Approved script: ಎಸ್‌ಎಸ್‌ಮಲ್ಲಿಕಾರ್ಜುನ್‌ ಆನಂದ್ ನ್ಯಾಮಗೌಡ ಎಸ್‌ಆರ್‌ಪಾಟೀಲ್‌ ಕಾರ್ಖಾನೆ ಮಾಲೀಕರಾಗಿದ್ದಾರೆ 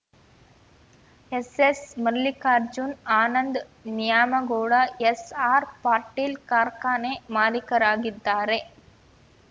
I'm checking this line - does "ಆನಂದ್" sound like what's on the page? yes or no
yes